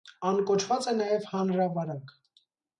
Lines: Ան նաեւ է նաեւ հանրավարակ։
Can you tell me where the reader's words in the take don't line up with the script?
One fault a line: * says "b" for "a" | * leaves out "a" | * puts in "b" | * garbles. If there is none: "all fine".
* says "կոչուած" for "նաեւ"